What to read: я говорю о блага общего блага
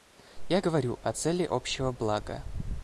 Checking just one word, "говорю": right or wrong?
right